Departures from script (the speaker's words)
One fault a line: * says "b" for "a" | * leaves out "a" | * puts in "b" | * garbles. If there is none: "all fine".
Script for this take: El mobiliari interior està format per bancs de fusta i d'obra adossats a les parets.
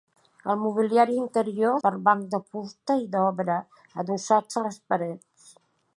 * leaves out "està format"